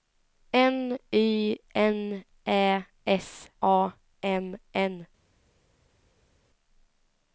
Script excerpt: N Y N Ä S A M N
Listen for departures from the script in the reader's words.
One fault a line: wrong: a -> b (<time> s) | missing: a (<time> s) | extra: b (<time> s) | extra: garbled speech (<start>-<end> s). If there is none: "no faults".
no faults